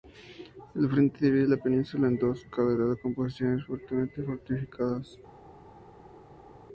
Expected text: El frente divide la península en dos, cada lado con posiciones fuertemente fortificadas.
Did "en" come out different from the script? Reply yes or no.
no